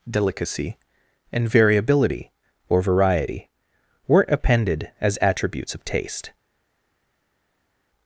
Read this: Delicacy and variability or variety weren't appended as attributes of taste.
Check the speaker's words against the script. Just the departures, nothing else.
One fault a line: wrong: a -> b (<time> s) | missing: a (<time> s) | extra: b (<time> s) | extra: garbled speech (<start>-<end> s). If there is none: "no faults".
no faults